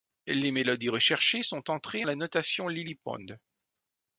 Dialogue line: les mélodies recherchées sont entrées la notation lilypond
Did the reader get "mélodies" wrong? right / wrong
right